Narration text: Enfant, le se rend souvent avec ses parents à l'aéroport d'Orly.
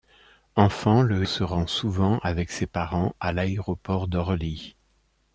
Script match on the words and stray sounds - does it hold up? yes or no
yes